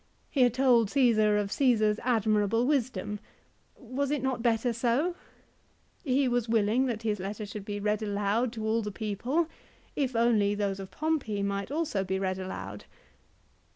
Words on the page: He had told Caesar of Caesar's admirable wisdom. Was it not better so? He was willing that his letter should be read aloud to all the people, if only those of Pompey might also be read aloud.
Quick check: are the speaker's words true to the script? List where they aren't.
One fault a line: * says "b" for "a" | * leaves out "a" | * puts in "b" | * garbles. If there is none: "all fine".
all fine